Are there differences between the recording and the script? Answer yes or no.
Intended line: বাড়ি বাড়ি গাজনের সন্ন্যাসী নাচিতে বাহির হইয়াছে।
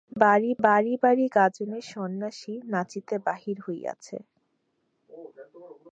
yes